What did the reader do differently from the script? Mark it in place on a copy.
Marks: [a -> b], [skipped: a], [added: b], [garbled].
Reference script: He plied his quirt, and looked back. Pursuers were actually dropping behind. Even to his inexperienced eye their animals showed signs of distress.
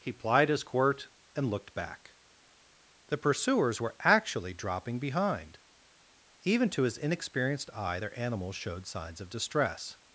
He plied his quirt, and looked back. [added: The] Pursuers were actually dropping behind. Even to his inexperienced eye their animals showed signs of distress.